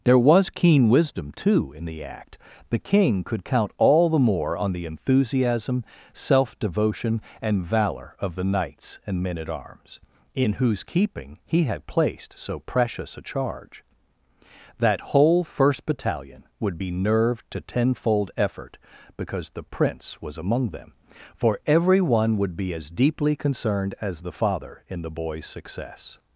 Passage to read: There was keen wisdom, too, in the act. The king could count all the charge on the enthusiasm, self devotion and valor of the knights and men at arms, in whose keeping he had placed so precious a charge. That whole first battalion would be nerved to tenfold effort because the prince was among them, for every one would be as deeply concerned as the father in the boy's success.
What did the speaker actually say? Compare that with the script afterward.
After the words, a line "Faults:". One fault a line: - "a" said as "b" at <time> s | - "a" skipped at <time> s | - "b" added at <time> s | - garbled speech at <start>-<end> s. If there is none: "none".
There was keen wisdom, too, in the act. The king could count all the more on the enthusiasm, self devotion and valor of the knights and men at arms, in whose keeping he had placed so precious a charge. That whole first battalion would be nerved to tenfold effort because the prince was among them, for every one would be as deeply concerned as the father in the boy's success.
Faults:
- "charge" said as "more" at 4.2 s